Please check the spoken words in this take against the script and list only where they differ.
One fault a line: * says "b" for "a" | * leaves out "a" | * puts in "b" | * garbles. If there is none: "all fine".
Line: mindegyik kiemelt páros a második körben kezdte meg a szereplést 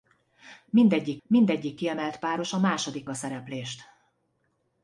* puts in "mindegyik"
* leaves out "körben kezdte meg"